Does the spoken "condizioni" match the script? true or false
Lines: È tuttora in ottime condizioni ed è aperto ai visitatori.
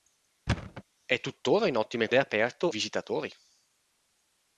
false